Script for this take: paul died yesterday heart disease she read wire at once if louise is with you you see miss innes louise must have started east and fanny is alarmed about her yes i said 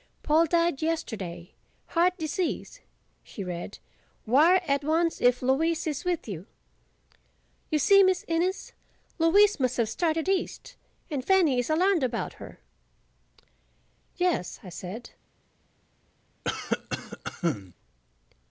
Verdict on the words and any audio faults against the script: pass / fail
fail